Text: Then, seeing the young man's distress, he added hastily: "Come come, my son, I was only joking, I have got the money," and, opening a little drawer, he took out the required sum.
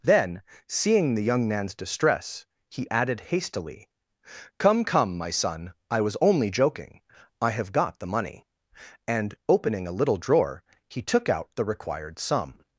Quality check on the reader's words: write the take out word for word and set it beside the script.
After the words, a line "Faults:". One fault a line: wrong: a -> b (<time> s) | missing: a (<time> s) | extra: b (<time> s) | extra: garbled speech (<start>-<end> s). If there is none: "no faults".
Then, seeing the young man's distress, he added hastily: "Come come, my son, I was only joking, I have got the money," and, opening a little drawer, he took out the required sum.
Faults:
no faults